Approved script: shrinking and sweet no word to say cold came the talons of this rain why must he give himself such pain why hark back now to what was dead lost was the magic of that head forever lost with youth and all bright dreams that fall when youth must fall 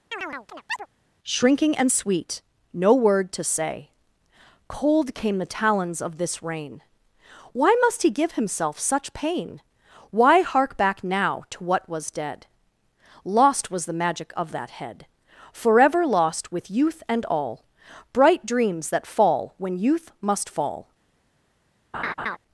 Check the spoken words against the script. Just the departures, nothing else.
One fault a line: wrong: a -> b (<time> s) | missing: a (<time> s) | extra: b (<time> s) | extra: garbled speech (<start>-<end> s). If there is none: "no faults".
no faults